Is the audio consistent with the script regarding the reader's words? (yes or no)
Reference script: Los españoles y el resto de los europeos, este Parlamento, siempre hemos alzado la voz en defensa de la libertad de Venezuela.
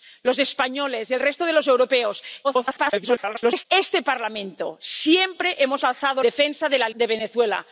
no